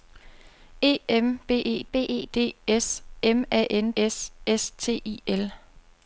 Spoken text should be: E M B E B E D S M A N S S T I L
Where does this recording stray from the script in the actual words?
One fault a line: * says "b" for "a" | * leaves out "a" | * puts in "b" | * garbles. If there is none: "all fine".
all fine